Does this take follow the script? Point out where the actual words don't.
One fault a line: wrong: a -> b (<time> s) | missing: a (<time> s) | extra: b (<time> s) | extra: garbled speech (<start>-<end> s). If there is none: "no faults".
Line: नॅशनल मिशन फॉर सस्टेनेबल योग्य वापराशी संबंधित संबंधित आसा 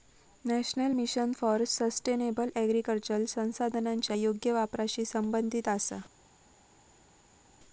extra: ऍग्रीकल्चर संसाधनांच्या (2.6 s)
missing: संबंधित (5.7 s)